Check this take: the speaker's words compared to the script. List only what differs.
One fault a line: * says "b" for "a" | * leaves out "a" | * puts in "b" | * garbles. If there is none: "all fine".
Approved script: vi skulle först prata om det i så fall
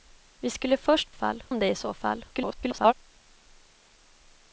* says "fall" for "prata"
* garbles